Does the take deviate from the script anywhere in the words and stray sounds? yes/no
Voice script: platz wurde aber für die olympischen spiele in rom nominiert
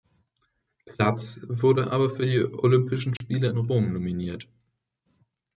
yes